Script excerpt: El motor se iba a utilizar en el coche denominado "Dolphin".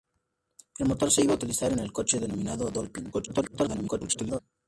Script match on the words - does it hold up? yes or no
no